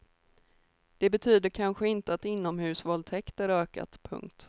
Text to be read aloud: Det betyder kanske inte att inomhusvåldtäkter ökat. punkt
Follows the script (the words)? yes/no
yes